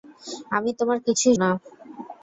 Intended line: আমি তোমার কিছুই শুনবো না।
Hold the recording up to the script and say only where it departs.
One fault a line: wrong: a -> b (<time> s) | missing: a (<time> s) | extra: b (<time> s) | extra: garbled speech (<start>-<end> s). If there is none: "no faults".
missing: শুনবো (1.4 s)